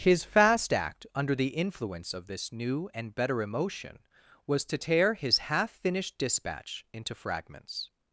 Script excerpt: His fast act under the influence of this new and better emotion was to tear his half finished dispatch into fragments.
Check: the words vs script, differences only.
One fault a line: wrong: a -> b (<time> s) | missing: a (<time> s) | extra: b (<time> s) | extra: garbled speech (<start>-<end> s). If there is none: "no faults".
no faults